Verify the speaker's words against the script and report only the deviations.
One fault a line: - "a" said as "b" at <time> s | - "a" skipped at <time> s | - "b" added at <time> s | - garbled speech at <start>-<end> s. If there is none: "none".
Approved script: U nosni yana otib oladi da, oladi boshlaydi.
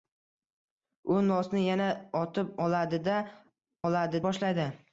none